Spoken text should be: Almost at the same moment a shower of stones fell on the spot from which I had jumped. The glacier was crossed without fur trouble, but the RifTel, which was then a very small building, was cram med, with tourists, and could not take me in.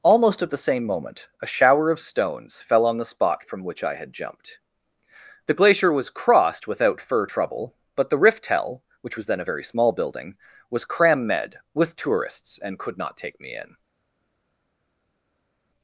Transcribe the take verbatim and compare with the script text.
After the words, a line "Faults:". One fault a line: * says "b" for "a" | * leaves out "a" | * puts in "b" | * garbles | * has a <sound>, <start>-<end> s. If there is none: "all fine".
Almost at the same moment a shower of stones fell on the spot from which I had jumped. The glacier was crossed without fur trouble, but the RifTel, which was then a very small building, was cram med, with tourists, and could not take me in.
Faults:
all fine